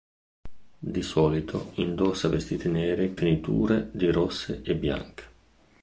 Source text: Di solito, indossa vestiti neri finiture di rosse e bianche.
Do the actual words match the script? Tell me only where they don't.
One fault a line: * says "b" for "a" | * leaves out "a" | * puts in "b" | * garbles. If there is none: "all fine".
all fine